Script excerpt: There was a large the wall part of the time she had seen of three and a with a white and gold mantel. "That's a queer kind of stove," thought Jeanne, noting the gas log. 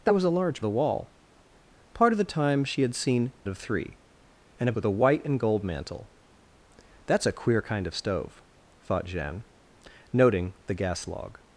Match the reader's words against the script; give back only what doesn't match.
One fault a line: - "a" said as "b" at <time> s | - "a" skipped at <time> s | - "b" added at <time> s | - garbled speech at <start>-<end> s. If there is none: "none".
none